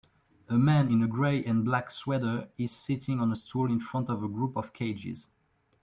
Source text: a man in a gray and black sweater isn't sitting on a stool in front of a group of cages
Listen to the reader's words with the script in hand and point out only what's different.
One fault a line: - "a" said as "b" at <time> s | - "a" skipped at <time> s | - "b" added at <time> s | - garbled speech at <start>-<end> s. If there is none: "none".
- "isn't" said as "is" at 2.6 s